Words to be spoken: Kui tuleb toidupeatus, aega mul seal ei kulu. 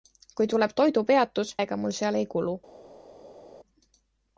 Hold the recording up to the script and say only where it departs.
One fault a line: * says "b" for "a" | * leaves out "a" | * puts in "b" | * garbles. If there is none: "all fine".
all fine